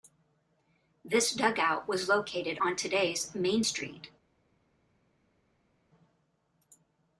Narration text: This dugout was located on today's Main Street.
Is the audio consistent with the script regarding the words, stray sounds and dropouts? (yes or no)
yes